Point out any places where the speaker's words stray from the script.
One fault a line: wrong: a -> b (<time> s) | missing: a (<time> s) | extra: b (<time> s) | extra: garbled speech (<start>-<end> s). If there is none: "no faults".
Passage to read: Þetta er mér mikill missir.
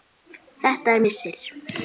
missing: mér mikill (1.0 s)